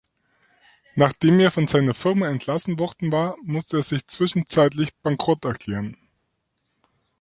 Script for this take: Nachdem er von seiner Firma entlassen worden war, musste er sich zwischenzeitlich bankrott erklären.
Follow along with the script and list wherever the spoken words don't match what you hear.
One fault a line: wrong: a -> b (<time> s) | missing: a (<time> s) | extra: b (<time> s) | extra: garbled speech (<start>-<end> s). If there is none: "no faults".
no faults